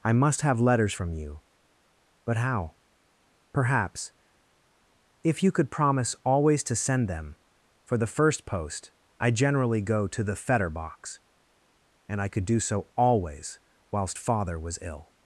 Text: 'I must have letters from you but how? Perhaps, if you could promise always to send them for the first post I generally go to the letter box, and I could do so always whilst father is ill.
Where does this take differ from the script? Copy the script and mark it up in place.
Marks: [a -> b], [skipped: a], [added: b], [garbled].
'I must have letters from you but how? Perhaps, if you could promise always to send them for the first post I generally go to the [letter -> fetter] box, and I could do so always whilst father [is -> was] ill.